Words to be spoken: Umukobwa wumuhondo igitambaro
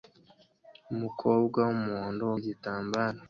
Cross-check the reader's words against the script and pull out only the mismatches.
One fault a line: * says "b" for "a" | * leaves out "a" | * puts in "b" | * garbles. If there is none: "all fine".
all fine